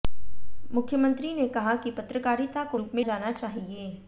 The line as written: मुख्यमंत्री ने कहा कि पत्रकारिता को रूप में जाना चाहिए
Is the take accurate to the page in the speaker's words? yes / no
yes